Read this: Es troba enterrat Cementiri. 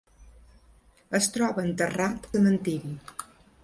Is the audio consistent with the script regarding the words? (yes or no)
yes